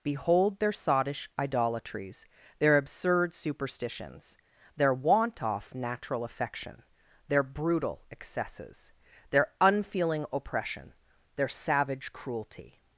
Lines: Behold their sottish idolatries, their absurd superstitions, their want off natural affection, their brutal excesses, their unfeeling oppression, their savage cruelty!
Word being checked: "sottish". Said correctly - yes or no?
yes